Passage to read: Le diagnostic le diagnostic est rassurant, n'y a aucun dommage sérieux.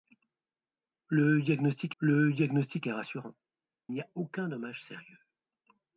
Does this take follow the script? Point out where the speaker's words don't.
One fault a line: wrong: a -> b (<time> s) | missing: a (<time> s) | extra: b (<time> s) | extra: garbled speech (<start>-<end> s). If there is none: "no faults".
no faults